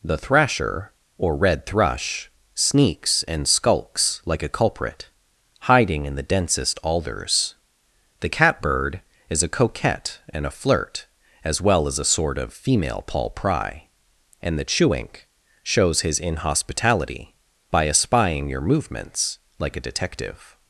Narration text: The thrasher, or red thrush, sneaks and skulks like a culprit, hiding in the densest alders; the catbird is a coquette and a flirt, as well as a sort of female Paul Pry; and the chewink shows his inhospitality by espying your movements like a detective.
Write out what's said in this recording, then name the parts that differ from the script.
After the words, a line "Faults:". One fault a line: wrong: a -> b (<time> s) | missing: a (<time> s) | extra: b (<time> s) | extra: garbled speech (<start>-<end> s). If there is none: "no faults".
The thrasher, or red thrush, sneaks and skulks like a culprit, hiding in the densest alders; the catbird is a coquette and a flirt, as well as a sort of female Paul Pry; and the chewink shows his inhospitality by espying your movements like a detective.
Faults:
no faults